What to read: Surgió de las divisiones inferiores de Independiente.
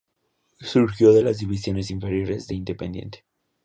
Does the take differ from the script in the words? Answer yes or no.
no